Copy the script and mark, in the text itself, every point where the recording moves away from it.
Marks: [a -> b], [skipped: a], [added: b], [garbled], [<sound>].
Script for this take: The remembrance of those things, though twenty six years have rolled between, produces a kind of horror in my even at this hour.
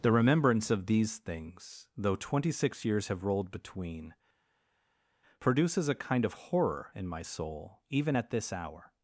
The remembrance of [those -> these] things, though twenty six years have rolled between, produces a kind of horror in my [added: soul] even at this hour.